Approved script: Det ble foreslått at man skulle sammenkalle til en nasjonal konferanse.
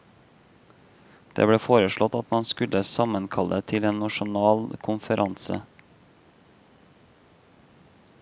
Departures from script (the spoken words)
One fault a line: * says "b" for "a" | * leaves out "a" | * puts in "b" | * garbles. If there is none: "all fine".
all fine